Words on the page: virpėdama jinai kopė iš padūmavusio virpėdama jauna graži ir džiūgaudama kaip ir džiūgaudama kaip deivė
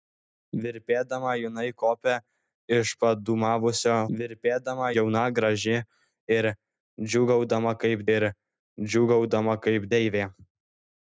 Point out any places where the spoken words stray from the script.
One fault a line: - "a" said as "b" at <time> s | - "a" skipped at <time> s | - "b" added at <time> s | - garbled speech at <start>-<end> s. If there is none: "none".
none